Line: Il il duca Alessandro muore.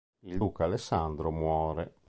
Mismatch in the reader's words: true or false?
true